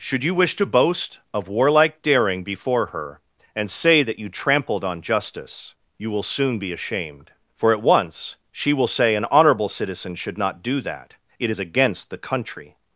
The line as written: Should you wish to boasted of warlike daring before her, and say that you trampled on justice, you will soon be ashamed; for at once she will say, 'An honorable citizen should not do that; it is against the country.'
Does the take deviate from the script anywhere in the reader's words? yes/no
yes